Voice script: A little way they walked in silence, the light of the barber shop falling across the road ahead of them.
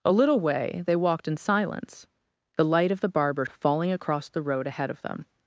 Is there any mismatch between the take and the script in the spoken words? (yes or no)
yes